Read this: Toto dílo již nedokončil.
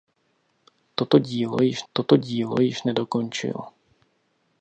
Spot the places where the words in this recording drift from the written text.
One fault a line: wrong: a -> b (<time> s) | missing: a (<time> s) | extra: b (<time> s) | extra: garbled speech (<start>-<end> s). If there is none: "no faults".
extra: toto dílo již (1.9 s)